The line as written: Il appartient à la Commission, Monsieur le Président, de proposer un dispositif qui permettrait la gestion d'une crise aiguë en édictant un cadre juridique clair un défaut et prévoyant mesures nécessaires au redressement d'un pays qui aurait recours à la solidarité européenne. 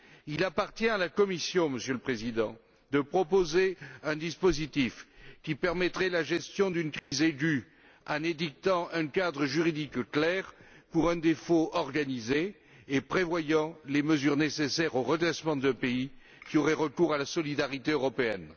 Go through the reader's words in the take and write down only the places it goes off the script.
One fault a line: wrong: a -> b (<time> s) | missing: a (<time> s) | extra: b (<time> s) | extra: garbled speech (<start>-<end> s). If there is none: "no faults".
extra: pour (10.9 s)
extra: organisé (11.7 s)
extra: les (13.9 s)